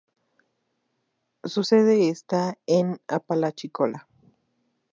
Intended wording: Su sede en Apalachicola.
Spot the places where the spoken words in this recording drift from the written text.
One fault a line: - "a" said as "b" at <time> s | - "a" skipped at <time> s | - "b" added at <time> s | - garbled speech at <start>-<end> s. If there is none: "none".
- "está" added at 2.1 s